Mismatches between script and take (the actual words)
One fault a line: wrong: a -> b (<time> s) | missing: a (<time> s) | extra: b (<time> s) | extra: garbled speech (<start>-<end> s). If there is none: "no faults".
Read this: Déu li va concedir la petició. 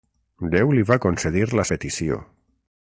no faults